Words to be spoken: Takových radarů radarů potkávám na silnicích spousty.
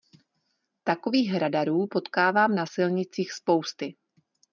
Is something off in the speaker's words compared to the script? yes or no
yes